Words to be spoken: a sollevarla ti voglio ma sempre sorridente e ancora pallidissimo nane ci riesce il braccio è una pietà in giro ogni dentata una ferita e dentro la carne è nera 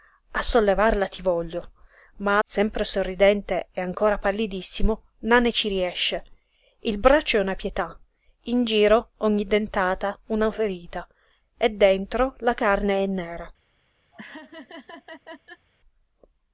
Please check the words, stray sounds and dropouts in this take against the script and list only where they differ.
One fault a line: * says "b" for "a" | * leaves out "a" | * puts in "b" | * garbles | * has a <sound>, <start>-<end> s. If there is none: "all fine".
* has a laugh, 14.1-15.7 s